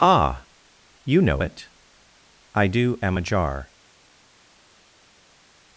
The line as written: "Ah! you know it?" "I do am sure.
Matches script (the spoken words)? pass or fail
fail